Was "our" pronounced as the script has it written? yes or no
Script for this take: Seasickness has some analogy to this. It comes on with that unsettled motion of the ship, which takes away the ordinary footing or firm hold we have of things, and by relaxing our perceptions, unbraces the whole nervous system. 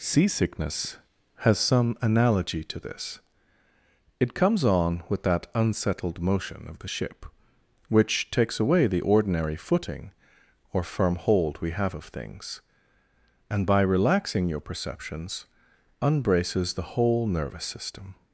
no